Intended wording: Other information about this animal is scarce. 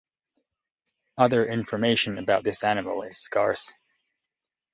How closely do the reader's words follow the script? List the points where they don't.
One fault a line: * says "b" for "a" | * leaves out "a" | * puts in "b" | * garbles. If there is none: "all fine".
all fine